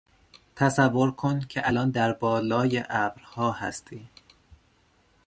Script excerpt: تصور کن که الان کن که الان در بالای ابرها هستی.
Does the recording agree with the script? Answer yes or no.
no